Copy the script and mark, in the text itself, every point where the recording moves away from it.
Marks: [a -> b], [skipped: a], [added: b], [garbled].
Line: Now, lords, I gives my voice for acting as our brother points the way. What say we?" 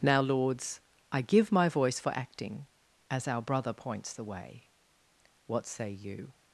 Now, lords, I [gives -> give] my voice for acting as our brother points the way. What say [we?" -> you]